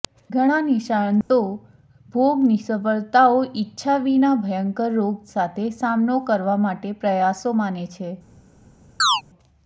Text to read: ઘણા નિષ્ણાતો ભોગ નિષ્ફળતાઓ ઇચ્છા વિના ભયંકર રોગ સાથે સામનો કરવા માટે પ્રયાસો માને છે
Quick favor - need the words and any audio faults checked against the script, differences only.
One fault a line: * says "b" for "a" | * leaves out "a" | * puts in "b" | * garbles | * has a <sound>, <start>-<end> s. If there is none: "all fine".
* has a dropout, 1.2-1.3 s
* has a chirp, 9.0-9.2 s